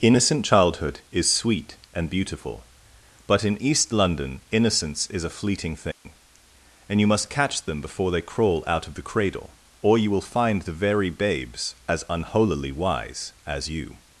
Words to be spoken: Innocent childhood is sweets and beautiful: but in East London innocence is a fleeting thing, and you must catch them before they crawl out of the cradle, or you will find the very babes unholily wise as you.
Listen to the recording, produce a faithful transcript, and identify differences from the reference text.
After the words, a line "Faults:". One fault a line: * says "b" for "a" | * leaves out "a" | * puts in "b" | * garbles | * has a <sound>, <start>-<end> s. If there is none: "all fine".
Innocent childhood is sweet and beautiful: but in East London innocence is a fleeting thing, and you must catch them before they crawl out of the cradle, or you will find the very babes as unholily wise as you.
Faults:
* says "sweet" for "sweets"
* has a dropout, 5.9-6.1 s
* puts in "as"